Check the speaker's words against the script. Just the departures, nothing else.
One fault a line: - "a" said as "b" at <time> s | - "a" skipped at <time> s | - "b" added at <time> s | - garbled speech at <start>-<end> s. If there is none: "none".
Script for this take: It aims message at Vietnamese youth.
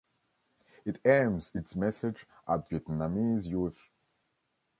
- "its" added at 1.5 s